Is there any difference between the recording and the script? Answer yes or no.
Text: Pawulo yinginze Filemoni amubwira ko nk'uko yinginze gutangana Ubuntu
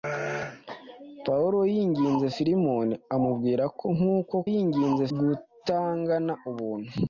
no